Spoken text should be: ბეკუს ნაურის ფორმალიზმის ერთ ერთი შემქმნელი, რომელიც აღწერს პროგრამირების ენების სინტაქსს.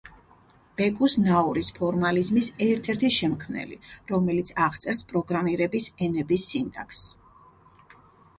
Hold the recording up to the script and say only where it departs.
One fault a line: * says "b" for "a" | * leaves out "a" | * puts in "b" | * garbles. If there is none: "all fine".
all fine